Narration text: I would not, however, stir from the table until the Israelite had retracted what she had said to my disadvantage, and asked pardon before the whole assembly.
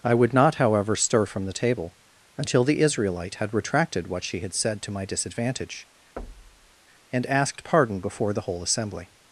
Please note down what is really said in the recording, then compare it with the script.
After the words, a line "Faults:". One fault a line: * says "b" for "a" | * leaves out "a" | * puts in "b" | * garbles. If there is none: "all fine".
I would not, however, stir from the table until the Israelite had retracted what she had said to my disadvantage, and asked pardon before the whole assembly.
Faults:
all fine